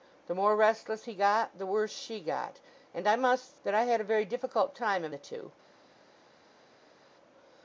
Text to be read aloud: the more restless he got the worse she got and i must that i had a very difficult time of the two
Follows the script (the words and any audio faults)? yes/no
yes